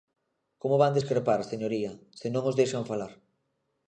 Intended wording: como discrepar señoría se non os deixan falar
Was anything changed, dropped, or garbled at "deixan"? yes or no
no